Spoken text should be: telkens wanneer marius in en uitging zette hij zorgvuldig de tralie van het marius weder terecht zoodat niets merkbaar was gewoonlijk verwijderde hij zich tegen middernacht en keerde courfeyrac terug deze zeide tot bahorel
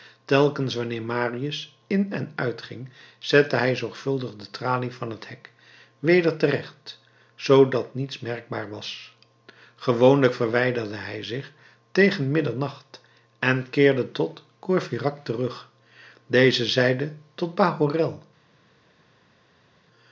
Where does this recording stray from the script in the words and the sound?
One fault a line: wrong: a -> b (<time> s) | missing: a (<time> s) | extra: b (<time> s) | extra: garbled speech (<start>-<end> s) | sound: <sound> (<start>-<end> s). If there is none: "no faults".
wrong: marius -> hek (5.3 s)
extra: tot (14.1 s)